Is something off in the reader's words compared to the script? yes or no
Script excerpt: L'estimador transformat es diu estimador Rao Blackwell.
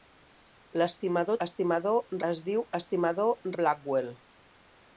yes